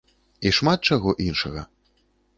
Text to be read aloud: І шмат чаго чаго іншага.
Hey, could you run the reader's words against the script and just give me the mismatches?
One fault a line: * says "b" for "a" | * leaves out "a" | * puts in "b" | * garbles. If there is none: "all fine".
* leaves out "чаго"